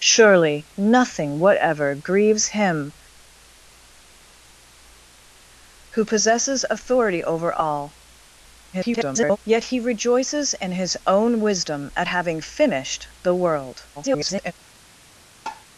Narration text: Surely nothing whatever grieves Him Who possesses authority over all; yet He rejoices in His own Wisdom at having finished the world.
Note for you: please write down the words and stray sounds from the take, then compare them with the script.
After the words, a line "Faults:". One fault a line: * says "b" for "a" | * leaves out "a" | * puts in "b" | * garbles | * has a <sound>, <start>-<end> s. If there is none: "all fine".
Surely nothing whatever grieves Him Who possesses authority over all; [garbled] yet He rejoices in His own Wisdom at having finished the world. [garbled]
Faults:
* garbles
* garbles
* has a tap, 15.5-15.7 s